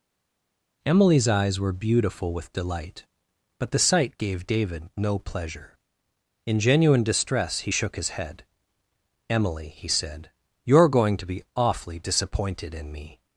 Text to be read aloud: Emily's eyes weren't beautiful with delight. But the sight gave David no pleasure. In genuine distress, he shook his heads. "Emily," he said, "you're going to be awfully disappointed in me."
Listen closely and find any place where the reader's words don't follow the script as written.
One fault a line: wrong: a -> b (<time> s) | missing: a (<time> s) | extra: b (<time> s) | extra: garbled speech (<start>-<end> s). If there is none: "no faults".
wrong: weren't -> were (1.6 s)
wrong: heads -> head (8.1 s)